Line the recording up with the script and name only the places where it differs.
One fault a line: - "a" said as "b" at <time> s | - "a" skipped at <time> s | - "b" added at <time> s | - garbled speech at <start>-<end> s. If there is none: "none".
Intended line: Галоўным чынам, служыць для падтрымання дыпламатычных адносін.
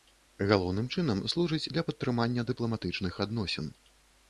none